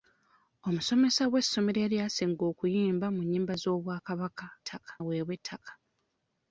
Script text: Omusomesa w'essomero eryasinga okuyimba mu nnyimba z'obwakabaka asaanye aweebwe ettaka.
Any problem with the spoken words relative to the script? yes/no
yes